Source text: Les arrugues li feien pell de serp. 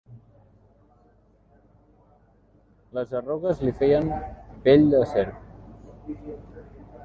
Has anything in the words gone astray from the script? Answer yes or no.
no